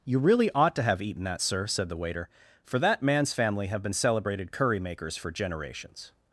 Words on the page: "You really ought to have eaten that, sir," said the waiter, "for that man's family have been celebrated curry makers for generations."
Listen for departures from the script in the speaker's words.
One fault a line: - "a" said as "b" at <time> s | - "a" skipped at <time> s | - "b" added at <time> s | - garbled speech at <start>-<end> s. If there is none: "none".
none